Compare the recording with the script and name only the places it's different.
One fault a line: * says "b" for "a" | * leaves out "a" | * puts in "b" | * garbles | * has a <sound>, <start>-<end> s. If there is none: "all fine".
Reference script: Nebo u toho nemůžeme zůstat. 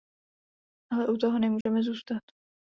* says "Ale" for "Nebo"
* has a dropout, 1.6-1.7 s